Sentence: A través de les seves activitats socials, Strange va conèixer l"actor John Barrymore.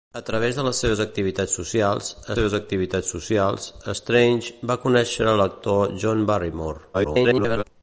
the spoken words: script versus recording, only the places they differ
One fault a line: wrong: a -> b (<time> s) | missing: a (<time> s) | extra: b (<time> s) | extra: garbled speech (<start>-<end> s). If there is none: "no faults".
extra: seves activitats socials (2.4 s)
extra: garbled speech (6.9-7.6 s)